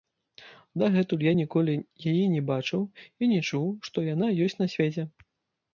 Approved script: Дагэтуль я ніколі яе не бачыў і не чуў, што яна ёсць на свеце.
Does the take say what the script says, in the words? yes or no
yes